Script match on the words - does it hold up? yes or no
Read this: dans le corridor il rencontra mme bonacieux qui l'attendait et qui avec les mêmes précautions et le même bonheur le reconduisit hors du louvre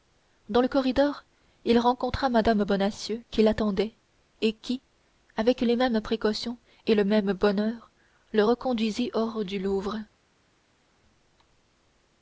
yes